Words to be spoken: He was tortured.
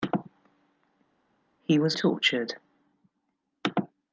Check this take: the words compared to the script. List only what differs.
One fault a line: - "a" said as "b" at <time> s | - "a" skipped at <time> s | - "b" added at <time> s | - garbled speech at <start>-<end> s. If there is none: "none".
none